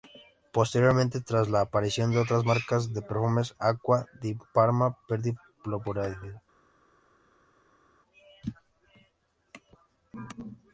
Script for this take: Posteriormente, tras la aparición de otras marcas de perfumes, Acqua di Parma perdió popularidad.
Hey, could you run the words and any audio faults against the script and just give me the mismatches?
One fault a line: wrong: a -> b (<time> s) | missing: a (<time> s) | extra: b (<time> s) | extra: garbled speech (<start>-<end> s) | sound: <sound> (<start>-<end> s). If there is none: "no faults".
no faults